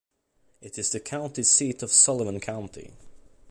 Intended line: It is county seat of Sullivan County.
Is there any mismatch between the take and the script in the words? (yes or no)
yes